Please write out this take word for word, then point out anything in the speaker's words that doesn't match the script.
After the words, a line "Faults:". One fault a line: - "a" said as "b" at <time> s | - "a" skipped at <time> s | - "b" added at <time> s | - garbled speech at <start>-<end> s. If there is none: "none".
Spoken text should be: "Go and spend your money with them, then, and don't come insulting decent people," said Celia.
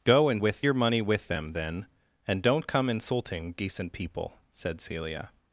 "Go and with your money with them, then, and don't come insulting decent people," said Celia.
Faults:
- "spend" said as "with" at 0.4 s